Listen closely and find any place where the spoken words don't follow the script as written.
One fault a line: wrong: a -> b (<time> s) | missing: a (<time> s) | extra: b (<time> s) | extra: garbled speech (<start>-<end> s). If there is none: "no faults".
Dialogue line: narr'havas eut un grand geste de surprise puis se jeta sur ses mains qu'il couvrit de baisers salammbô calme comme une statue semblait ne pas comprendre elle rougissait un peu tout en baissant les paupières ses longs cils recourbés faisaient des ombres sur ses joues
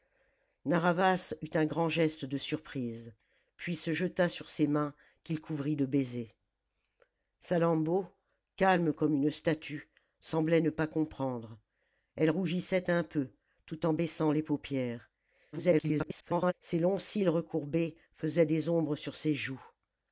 extra: garbled speech (15.5-16.5 s)